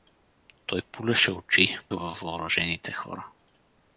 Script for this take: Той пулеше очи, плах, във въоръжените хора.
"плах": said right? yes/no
no